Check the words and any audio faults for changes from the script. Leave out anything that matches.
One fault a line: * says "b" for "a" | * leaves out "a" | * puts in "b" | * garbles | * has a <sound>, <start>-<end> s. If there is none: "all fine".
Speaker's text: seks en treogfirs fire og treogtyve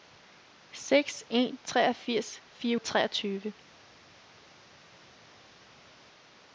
all fine